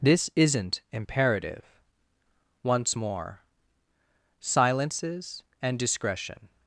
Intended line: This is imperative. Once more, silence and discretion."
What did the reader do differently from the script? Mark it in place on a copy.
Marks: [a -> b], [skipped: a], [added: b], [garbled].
This [is -> isn't] imperative. Once more, [silence -> silences] and discretion."